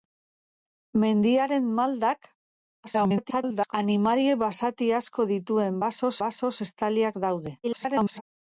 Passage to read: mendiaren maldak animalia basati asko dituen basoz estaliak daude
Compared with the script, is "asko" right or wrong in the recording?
right